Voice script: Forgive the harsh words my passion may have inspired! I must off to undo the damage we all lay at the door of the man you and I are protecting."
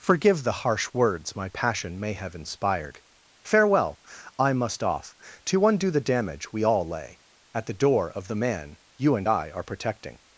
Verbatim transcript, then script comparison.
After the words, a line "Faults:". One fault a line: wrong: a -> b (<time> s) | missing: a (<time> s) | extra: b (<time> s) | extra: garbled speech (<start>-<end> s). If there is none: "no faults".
Forgive the harsh words my passion may have inspired. Farewell! I must off to undo the damage we all lay at the door of the man you and I are protecting."
Faults:
extra: Farewell (3.4 s)